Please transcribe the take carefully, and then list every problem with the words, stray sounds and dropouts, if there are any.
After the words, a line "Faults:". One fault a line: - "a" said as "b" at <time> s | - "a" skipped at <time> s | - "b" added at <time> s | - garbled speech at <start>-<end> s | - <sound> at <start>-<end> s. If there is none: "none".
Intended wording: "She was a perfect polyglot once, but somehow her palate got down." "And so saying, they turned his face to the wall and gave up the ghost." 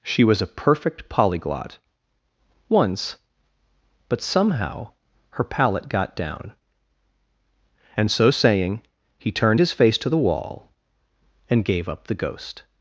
"She was a perfect polyglot once, but somehow her palate got down." "And so saying, he turned his face to the wall and gave up the ghost."
Faults:
- "they" said as "he" at 9.2 s